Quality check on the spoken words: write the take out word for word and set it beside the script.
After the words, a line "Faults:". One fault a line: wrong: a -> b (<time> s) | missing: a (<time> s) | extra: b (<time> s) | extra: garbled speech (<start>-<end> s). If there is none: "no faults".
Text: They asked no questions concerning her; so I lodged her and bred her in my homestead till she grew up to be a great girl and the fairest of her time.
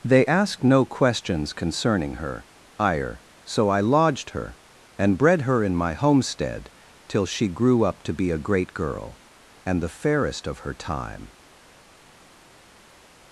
They asked no questions concerning her; ire so I lodged her and bred her in my homestead till she grew up to be a great girl and the fairest of her time.
Faults:
extra: ire (2.8 s)